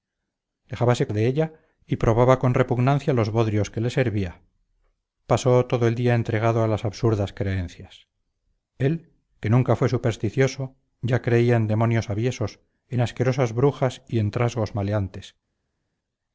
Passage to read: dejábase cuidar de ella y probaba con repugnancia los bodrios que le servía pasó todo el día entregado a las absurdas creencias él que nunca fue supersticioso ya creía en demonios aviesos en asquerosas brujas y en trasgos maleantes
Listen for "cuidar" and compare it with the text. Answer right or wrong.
wrong